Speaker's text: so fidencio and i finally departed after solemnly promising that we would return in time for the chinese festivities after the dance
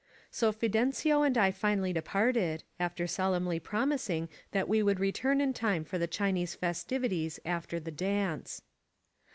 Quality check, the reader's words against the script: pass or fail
pass